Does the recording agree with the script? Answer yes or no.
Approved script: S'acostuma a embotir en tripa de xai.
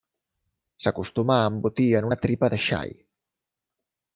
no